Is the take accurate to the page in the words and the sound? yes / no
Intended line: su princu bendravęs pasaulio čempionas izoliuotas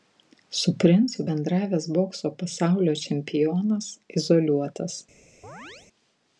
no